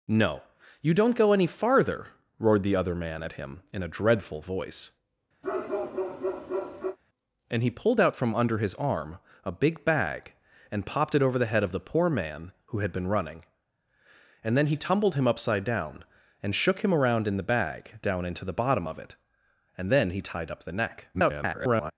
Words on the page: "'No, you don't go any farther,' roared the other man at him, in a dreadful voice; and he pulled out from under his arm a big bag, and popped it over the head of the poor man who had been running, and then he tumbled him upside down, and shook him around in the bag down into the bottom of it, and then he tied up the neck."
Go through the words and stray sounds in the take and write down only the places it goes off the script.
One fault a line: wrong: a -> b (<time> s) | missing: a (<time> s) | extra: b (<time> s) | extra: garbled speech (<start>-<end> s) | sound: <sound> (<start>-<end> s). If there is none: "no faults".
sound: bark (5.4-7.0 s)
extra: garbled speech (21.1-21.9 s)